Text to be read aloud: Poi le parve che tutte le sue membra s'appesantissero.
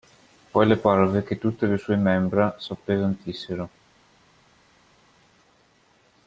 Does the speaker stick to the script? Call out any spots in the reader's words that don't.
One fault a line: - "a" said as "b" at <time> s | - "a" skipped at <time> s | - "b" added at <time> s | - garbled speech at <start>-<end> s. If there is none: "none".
none